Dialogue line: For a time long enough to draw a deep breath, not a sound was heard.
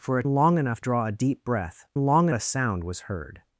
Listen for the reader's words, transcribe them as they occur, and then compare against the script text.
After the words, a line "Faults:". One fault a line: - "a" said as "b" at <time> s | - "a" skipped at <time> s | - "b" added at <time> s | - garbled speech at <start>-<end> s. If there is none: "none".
For a long enough draw a deep breath, long a sound was heard.
Faults:
- "time" skipped at 0.2 s
- "to" skipped at 0.8 s
- "not" said as "long" at 2.0 s